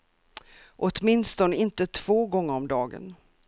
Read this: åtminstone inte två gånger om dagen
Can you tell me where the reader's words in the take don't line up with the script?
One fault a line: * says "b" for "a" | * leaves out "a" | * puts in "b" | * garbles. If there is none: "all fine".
all fine